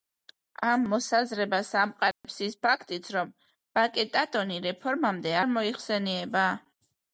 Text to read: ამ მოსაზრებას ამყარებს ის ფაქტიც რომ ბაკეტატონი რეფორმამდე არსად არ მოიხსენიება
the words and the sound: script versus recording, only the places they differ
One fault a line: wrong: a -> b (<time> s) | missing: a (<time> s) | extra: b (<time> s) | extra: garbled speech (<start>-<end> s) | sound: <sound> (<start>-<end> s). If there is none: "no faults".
sound: dropout (2.1-2.2 s)
missing: არსად (5.3 s)